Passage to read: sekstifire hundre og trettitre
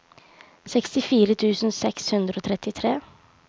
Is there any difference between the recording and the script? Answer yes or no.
yes